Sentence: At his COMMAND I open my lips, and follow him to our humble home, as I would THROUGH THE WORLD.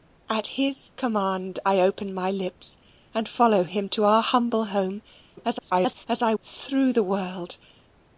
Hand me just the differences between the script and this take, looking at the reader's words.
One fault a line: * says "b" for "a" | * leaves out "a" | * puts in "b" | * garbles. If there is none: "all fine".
* garbles
* leaves out "would"